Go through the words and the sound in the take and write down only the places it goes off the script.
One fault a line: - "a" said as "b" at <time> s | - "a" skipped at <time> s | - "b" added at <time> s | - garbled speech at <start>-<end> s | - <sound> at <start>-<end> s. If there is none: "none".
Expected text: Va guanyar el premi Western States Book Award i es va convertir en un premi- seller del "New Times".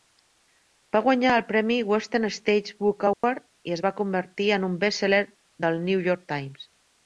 - dropout at 3.1-3.2 s
- "premi" said as "best" at 4.9 s
- "York" added at 6.1 s